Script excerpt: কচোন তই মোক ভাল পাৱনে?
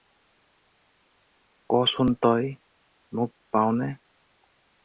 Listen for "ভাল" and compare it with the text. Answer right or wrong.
wrong